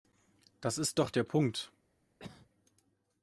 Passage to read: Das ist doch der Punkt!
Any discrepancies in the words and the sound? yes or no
yes